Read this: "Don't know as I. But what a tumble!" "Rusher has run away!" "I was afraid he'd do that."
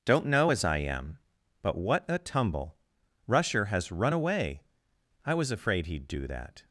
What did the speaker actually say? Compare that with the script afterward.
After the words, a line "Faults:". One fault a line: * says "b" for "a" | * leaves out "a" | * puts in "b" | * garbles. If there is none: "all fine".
"Don't know as I am. But what a tumble!" "Rusher has run away!" "I was afraid he'd do that."
Faults:
* puts in "am"